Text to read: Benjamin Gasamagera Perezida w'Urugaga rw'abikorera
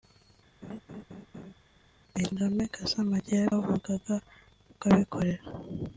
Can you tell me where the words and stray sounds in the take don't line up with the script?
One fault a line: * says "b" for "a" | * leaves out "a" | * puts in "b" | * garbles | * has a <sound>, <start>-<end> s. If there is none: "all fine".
* has a laugh, 0.6-1.5 s
* leaves out "Perezida"